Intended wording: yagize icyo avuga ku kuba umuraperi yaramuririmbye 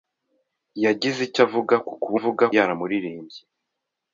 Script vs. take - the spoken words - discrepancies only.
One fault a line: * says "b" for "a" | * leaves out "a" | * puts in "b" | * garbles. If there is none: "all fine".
* says "avuga" for "umuraperi"